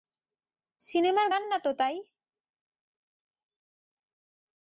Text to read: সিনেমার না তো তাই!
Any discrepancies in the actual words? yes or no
yes